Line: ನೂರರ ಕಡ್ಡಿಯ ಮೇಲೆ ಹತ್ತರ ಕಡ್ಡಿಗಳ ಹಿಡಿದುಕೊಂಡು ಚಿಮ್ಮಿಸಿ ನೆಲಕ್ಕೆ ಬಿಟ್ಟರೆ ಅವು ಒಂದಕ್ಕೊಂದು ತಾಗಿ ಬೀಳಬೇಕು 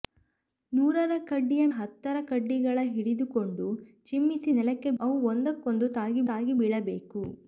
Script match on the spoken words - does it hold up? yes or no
no